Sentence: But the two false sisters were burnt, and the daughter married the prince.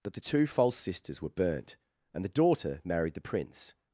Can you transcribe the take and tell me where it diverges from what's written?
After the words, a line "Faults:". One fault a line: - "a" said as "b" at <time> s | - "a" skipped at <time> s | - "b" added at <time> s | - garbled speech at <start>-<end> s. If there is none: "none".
That the two false sisters were burnt, and the daughter married the prince.
Faults:
- "But" said as "That" at 0.0 s